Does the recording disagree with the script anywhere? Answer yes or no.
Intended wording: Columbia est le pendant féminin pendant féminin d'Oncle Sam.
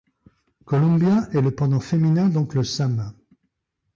yes